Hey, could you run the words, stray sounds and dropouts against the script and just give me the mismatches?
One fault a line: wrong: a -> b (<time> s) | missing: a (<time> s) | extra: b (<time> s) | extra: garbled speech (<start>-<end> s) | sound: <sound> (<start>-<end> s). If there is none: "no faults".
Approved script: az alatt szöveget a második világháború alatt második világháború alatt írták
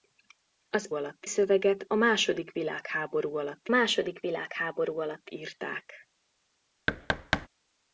sound: thud (6.9-7.5 s)